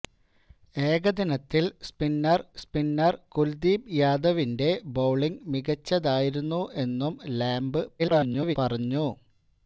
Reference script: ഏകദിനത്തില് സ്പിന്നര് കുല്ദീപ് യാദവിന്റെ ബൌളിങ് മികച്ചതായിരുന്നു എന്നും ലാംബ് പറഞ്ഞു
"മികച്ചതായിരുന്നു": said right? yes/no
yes